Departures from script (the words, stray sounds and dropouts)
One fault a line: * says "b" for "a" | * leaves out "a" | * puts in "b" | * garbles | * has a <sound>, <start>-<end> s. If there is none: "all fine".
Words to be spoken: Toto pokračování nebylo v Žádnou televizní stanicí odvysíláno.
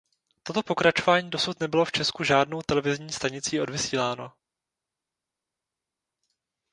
* puts in "dosud"
* puts in "Česku"